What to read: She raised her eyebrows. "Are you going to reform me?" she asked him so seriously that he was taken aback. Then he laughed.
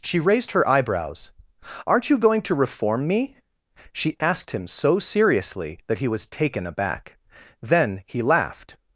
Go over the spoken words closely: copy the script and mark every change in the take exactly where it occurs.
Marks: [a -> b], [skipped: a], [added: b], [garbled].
She raised her eyebrows. ["Are -> Aren't] you going to reform me?" she asked him so seriously that he was taken aback. Then he laughed.